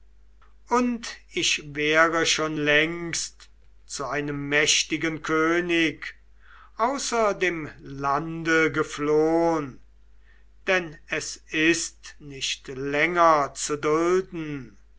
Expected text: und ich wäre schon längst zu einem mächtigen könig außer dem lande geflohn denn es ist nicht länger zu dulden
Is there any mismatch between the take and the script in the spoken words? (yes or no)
no